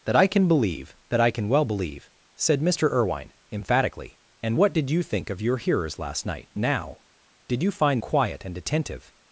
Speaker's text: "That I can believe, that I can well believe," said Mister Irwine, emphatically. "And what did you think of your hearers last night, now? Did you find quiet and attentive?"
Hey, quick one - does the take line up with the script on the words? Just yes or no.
yes